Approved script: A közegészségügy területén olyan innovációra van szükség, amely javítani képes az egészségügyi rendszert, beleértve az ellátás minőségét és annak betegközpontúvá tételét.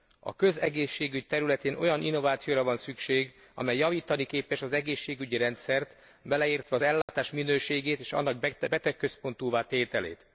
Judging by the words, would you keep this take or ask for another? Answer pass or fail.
pass